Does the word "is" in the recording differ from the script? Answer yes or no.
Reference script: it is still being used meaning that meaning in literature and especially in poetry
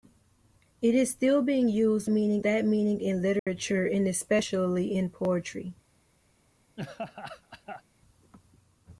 no